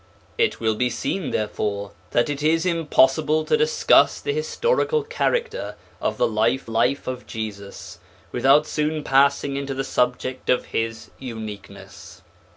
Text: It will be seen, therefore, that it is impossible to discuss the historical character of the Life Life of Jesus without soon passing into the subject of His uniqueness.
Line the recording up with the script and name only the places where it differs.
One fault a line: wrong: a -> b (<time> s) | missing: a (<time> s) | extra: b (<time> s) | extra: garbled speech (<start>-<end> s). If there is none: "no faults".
no faults